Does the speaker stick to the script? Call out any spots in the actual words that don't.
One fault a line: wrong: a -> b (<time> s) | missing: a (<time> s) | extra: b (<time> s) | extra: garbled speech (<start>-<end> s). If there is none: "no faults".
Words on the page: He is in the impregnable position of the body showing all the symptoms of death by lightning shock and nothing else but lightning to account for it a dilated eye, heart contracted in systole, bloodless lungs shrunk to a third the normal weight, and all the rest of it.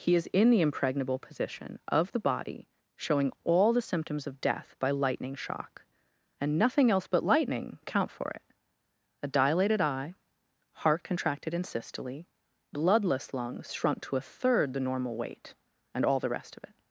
missing: to (7.8 s)